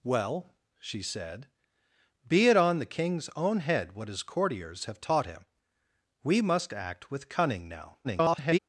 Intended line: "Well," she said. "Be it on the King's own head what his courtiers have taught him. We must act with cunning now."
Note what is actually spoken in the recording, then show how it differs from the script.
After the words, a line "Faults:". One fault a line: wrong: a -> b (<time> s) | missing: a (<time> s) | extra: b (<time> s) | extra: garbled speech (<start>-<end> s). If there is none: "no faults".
"Well," she said. "Be it on the King's own head what his courtiers have taught him. We must act with cunning now." [garbled]
Faults:
extra: garbled speech (8.0-8.6 s)